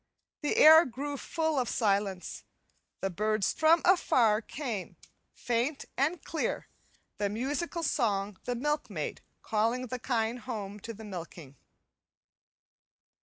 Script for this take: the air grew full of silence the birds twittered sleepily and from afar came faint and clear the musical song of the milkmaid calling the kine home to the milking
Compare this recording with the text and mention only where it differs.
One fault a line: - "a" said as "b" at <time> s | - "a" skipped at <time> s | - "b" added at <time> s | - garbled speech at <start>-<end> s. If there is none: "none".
- "twittered sleepily and" skipped at 3.5 s
- "of" skipped at 8.4 s